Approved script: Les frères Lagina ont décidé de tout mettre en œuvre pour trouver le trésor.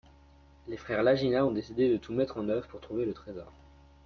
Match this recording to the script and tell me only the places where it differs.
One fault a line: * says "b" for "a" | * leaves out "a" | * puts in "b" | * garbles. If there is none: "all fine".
all fine